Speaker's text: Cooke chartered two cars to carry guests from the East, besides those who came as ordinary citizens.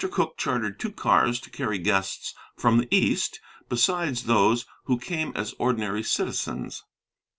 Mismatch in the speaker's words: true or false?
false